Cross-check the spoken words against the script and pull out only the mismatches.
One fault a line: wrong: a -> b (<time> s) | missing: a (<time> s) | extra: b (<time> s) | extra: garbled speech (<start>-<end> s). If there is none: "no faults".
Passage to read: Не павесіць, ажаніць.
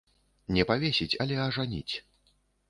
extra: але (1.3 s)